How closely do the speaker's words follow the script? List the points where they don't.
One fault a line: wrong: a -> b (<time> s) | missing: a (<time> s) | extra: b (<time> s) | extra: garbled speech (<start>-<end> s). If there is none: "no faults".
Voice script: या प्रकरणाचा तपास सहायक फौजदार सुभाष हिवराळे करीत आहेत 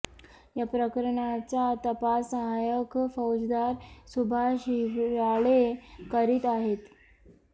no faults